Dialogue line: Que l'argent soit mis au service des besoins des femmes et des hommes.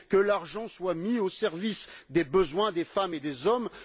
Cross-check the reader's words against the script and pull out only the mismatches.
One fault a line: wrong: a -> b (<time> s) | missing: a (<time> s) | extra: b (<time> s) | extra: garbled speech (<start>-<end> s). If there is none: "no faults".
no faults